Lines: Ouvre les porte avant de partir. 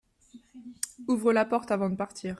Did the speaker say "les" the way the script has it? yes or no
no